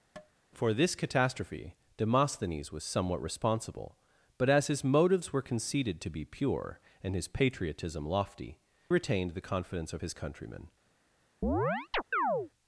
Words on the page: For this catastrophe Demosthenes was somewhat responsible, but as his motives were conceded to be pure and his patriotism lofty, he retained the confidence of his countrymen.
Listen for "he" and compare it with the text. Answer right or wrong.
wrong